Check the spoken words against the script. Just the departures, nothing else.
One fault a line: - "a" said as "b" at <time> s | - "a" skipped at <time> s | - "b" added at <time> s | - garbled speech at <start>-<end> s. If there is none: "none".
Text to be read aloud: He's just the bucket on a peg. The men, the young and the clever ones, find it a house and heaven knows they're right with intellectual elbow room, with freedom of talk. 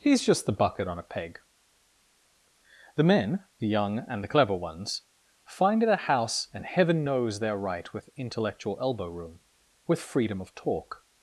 none